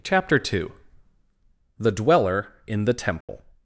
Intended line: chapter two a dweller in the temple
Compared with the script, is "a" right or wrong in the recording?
wrong